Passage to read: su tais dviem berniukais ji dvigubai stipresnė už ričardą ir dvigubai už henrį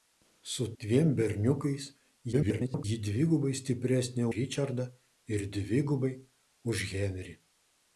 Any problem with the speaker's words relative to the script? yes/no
yes